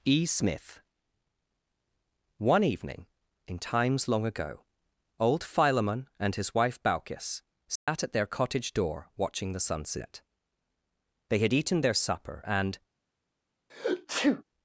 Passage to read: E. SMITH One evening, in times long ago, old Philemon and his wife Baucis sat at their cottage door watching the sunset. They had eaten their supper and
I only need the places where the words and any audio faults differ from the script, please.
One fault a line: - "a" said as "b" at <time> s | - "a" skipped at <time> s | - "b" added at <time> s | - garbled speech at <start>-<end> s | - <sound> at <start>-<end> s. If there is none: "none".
- dropout at 7.8-7.9 s
- sneeze at 13.7-14.4 s